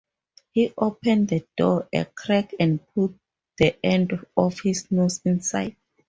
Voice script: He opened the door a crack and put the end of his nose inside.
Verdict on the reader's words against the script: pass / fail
pass